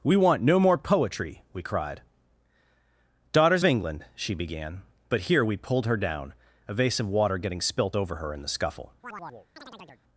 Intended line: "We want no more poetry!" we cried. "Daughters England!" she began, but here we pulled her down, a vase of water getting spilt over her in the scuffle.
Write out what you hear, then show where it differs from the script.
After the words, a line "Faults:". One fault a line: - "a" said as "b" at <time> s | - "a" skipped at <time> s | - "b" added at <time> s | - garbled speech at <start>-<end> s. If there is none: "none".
"We want no more poetry!" we cried. "Daughters England!" she began, but here we pulled her down, a vase of water getting spilt over her in the scuffle.
Faults:
none